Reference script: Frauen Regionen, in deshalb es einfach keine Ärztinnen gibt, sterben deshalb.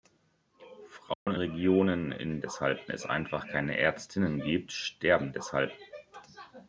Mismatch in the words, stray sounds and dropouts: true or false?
true